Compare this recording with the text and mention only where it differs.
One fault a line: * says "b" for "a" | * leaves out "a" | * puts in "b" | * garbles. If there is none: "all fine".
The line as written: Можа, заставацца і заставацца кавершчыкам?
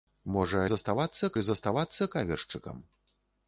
all fine